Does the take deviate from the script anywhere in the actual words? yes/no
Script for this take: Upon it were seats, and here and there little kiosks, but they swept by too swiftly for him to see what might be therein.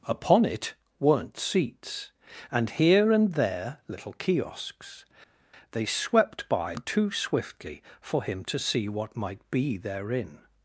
yes